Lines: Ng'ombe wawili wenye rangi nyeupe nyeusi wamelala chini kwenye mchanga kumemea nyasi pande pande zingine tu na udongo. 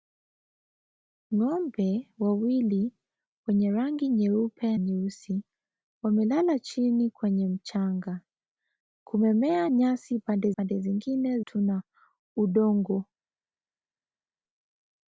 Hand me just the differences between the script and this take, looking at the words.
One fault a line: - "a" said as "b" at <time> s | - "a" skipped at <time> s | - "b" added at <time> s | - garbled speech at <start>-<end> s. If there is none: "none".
none